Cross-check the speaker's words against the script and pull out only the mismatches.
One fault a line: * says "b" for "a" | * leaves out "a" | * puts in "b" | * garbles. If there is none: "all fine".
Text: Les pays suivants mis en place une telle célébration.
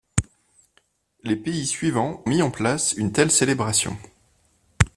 all fine